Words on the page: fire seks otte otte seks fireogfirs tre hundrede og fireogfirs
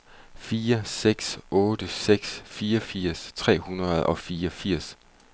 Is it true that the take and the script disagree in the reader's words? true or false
true